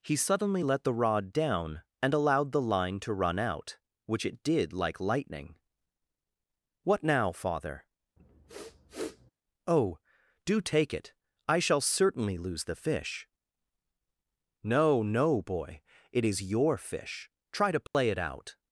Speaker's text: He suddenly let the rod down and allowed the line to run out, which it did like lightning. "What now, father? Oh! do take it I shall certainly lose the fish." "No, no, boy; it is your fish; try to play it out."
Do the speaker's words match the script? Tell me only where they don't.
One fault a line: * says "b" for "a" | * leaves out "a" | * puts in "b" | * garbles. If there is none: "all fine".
all fine